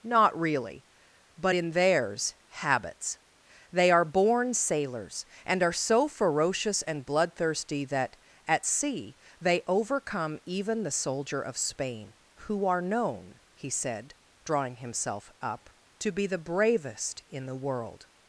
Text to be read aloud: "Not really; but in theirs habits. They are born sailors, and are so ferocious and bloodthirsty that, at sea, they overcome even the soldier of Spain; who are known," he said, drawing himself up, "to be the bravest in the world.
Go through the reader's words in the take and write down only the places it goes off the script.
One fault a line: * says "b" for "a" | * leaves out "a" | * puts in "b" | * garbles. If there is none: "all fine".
all fine